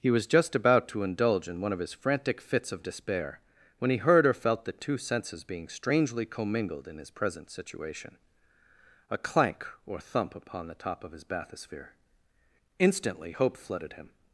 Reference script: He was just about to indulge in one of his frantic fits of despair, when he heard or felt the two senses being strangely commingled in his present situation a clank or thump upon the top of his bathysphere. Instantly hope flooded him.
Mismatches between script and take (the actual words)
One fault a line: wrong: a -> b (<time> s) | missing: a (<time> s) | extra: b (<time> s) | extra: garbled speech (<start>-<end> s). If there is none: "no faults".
no faults